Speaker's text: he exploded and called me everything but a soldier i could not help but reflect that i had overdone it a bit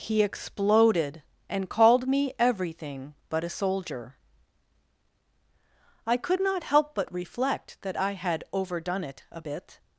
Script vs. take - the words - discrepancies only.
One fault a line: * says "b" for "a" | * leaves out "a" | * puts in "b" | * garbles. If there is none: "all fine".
all fine